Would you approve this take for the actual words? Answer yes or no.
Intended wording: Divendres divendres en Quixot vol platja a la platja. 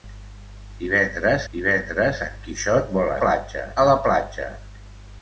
yes